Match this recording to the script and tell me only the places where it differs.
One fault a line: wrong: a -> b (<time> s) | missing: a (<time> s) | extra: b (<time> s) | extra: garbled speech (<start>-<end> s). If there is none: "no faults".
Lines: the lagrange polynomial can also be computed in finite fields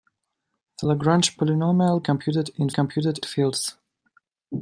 missing: can also be (2.0 s)
wrong: finite -> computed (2.7 s)